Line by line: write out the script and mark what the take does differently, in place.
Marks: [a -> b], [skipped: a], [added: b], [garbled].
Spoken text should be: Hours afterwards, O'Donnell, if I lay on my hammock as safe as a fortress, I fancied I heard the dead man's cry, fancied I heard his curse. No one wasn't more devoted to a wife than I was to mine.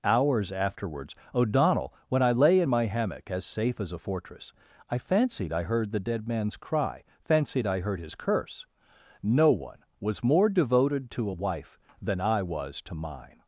Hours afterwards, O'Donnell, [if -> when] I lay [on -> in] my hammock as safe as a fortress, I fancied I heard the dead man's cry, fancied I heard his curse. No one [wasn't -> was] more devoted to a wife than I was to mine.